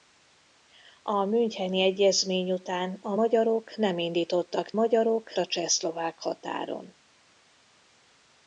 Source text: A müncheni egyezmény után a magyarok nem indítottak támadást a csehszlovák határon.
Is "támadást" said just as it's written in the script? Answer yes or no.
no